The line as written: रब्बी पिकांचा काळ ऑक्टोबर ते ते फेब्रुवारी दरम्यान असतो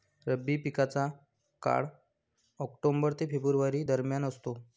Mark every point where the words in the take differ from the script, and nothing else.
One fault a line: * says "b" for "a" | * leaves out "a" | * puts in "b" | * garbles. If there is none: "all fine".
* leaves out "ते"